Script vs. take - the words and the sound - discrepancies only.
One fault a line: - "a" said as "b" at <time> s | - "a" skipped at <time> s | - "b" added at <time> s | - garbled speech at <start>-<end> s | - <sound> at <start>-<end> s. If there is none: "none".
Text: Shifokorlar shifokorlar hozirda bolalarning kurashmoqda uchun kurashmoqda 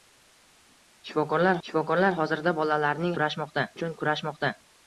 none